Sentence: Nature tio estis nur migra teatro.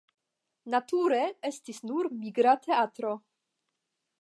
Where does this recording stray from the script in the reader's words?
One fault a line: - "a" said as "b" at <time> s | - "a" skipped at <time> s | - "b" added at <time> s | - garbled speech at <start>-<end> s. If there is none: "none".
- "tio" skipped at 1.2 s